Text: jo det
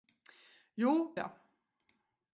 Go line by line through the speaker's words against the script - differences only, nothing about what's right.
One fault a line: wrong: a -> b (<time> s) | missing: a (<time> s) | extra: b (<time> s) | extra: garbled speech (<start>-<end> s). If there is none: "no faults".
no faults